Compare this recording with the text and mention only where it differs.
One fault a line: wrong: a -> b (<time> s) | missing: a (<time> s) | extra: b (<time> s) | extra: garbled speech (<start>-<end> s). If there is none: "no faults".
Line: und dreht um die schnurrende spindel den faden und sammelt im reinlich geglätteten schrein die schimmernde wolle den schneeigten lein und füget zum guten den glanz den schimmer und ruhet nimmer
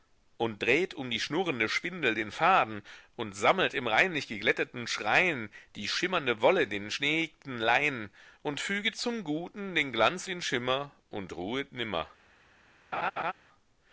no faults